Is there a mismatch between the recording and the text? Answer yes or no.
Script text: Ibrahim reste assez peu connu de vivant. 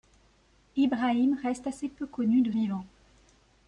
no